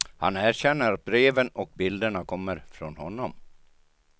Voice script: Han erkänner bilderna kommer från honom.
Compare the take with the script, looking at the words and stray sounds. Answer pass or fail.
fail